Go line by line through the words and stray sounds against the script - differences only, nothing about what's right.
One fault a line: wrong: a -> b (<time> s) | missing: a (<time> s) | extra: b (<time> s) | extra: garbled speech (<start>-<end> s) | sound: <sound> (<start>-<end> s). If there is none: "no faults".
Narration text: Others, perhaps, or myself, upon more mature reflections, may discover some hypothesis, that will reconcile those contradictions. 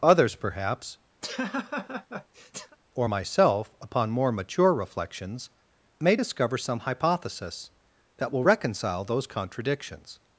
sound: laugh (1.2-2.8 s)